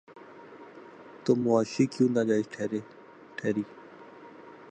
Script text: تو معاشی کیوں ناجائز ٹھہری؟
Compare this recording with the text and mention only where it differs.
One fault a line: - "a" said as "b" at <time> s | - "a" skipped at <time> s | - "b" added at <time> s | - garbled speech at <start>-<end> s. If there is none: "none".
none